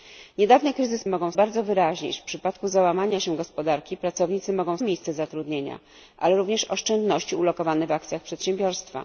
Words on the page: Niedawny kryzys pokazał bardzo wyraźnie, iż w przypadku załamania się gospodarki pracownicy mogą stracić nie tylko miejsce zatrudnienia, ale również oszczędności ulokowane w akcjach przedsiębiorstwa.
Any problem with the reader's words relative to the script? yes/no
yes